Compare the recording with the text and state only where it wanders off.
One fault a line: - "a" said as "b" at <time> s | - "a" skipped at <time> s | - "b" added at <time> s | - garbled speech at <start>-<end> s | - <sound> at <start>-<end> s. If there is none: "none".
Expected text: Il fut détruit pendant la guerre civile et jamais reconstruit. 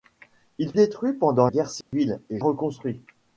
- "fut" skipped at 0.7 s
- "la" skipped at 1.5 s
- dropout at 1.8-1.9 s
- "jamais" skipped at 2.4 s